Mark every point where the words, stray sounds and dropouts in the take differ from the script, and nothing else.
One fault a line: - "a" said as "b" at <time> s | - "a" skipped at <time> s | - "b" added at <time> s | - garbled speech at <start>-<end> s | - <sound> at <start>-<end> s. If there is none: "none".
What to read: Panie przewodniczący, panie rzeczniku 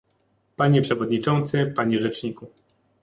none